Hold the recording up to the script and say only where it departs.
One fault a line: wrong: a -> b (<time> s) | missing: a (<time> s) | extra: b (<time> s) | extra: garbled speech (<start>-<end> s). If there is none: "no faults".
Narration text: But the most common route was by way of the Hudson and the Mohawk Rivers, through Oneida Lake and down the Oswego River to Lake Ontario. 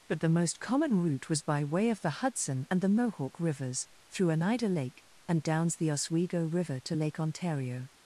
wrong: down -> downs (5.4 s)